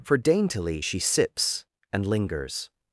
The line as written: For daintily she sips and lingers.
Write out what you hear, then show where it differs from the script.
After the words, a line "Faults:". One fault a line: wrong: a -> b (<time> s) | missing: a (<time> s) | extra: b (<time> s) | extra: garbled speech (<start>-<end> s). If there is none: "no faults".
For daintily she sips and lingers.
Faults:
no faults